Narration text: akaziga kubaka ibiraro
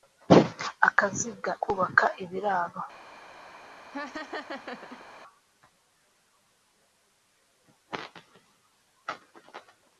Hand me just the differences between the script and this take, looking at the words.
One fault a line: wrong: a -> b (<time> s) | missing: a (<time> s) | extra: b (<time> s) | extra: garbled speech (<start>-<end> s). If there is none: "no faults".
no faults